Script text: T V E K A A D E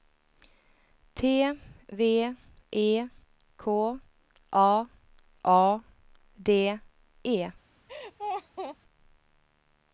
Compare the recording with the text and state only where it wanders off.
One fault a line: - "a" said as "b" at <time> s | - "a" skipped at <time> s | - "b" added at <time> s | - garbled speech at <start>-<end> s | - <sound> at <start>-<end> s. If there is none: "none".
- laugh at 7.9-8.8 s